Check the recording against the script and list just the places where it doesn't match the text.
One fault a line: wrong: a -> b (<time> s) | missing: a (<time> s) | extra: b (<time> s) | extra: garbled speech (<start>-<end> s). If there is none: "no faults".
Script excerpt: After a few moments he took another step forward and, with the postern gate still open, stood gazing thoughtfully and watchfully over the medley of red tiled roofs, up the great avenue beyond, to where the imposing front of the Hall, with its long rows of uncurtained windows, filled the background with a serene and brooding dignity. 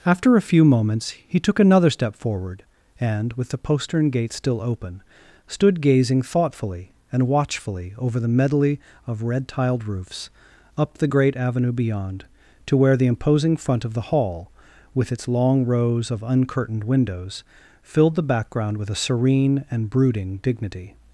no faults